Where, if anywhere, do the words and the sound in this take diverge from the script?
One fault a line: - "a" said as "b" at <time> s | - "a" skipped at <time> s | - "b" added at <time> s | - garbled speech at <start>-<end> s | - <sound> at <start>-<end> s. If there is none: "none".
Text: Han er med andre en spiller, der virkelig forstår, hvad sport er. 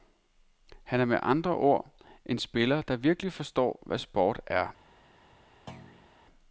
- "ord" added at 1.6 s
- thud at 5.7-6.1 s